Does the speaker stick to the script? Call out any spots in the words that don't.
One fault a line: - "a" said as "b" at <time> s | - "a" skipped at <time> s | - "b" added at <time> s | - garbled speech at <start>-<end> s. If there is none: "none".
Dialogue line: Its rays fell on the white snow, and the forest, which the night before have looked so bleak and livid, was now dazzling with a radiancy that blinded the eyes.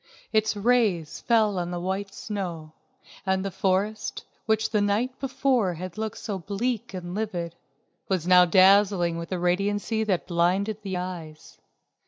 - "have" said as "had" at 5.8 s